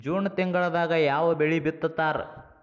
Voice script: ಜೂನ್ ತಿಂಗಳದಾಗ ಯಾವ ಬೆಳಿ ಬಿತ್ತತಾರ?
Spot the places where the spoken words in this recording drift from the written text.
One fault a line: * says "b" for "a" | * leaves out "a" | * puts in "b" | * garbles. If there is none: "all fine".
all fine